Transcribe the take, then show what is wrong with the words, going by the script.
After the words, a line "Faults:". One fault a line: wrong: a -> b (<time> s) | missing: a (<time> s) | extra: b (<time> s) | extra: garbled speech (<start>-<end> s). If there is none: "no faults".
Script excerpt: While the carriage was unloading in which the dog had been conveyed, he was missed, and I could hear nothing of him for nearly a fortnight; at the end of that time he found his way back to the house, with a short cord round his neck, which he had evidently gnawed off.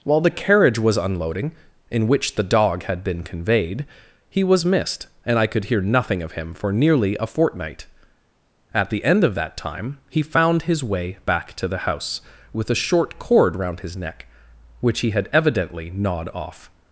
While the carriage was unloading in which the dog had been conveyed, he was missed, and I could hear nothing of him for nearly a fortnight; at the end of that time he found his way back to the house, with a short cord round his neck, which he had evidently gnawed off.
Faults:
no faults